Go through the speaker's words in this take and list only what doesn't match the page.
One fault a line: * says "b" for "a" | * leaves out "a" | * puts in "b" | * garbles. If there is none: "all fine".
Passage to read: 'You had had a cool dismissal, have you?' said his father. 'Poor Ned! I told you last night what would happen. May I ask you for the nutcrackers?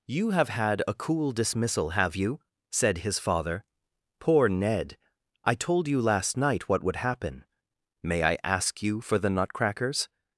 * says "have" for "had"